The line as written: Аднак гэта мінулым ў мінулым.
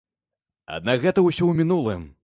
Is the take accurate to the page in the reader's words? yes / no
no